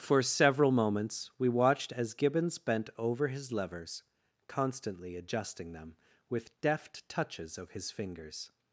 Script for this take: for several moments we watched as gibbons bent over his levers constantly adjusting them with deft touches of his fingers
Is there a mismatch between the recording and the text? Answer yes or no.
no